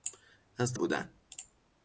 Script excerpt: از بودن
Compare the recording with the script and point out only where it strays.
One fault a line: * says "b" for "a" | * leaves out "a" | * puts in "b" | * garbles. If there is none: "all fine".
all fine